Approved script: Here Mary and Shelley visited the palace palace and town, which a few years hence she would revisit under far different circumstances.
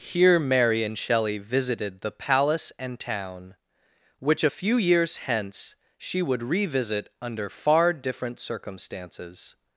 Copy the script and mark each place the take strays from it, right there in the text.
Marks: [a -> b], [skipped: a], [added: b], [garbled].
Here Mary and Shelley visited the palace [skipped: palace] and town, which a few years hence she would revisit under far different circumstances.